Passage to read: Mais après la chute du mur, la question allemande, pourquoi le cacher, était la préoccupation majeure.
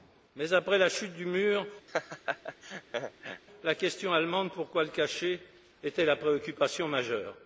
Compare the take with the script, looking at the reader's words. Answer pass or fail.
pass